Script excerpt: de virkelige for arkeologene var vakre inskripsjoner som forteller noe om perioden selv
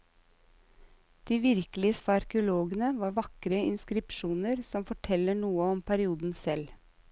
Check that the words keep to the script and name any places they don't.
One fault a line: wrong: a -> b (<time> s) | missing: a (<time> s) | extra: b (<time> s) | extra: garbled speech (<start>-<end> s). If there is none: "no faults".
no faults